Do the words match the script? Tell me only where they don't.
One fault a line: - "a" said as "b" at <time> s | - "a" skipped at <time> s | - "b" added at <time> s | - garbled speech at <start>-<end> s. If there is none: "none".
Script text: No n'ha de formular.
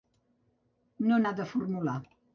none